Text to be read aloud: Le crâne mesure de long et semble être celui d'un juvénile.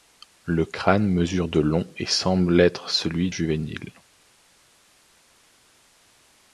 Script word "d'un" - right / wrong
wrong